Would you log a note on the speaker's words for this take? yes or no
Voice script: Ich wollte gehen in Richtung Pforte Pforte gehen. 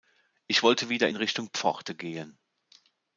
yes